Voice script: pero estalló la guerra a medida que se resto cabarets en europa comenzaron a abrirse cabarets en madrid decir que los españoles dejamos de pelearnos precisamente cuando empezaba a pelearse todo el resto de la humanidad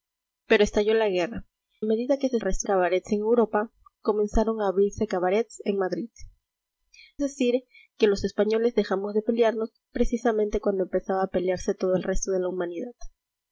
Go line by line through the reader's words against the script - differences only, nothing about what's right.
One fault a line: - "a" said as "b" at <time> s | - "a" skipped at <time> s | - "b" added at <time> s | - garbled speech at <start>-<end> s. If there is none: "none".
none